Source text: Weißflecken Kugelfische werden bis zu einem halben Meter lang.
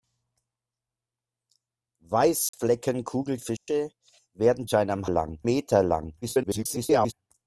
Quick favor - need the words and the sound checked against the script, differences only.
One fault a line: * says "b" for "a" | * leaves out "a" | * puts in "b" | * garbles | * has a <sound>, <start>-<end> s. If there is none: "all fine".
* has a dropout, 2.5-2.5 s
* has a dropout, 3.6-3.7 s
* leaves out "bis"
* says "lang" for "halben"
* garbles